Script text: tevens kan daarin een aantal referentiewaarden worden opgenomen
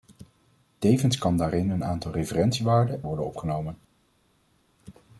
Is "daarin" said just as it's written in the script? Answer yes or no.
yes